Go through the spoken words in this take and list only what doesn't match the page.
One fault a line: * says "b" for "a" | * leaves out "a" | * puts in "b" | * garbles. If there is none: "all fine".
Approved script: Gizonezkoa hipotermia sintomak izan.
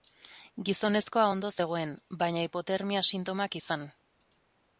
* puts in "ondo zegoen baina"